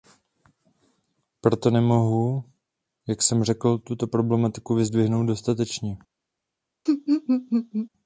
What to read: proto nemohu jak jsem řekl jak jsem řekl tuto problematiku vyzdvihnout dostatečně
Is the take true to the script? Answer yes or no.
no